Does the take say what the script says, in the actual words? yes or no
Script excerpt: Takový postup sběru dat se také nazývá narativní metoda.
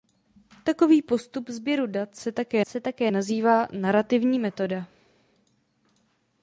no